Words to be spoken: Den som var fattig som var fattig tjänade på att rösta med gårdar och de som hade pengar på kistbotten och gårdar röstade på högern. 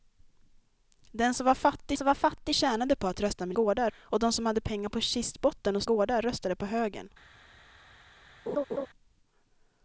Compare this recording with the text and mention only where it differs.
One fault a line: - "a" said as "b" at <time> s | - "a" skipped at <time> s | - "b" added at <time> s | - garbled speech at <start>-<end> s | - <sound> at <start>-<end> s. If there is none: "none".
- laugh at 8.5-8.9 s